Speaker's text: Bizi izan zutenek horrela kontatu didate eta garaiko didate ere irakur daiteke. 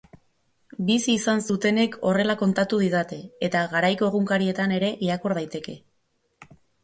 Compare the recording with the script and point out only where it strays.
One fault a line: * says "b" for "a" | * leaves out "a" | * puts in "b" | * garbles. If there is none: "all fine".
* says "egunkarietan" for "didate"